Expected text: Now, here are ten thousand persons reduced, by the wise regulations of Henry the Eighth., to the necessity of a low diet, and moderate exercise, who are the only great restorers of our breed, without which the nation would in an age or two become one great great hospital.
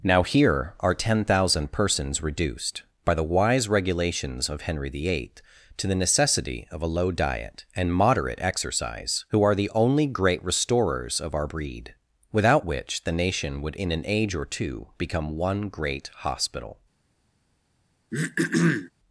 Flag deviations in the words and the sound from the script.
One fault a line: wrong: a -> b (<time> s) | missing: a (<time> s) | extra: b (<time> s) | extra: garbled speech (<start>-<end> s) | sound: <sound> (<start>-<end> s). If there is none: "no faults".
missing: great (16.1 s)
sound: throat clearing (18.1-18.9 s)